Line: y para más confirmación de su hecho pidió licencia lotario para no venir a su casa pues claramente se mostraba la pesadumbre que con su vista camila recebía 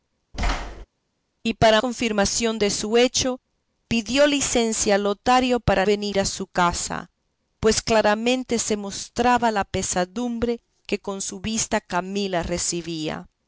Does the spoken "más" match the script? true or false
false